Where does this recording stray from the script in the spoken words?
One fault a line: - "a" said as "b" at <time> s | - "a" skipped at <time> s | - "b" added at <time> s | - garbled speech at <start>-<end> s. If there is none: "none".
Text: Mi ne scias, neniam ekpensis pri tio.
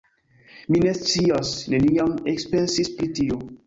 none